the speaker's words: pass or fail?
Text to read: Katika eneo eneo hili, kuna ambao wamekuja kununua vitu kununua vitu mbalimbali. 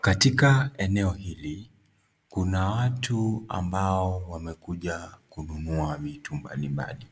fail